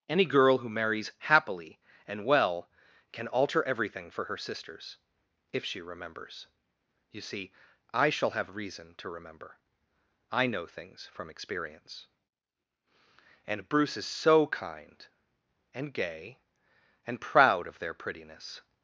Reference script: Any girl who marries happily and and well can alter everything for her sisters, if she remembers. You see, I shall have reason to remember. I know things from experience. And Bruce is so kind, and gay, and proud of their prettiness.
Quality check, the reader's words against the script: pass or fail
fail